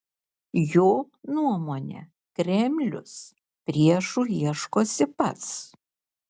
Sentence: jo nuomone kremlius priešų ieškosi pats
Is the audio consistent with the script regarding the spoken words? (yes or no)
yes